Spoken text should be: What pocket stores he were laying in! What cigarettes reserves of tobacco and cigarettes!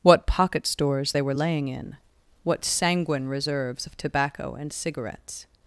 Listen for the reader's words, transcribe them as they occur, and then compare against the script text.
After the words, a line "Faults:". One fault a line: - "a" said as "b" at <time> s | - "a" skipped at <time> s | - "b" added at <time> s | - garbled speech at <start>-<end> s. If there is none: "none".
What pocket stores they were laying in! What sanguine reserves of tobacco and cigarettes!
Faults:
- "he" said as "they" at 1.1 s
- "cigarettes" said as "sanguine" at 2.6 s